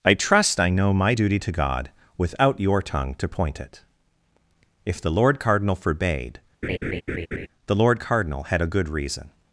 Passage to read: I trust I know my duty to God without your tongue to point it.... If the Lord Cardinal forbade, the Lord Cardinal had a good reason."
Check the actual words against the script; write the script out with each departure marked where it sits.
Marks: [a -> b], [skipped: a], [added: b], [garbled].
I trust I know my duty to God without your tongue to point it.... If the Lord Cardinal forbade, the Lord Cardinal had a good reason."